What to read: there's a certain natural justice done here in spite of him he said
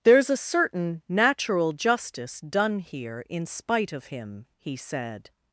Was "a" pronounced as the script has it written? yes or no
yes